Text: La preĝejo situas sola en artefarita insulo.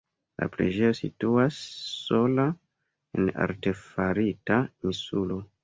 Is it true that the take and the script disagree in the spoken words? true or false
false